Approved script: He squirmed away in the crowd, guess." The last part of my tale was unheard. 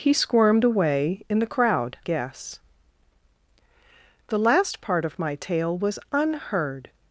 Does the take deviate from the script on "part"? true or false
false